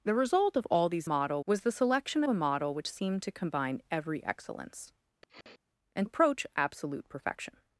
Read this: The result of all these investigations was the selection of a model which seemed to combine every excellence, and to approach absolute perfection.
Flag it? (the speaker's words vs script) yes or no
yes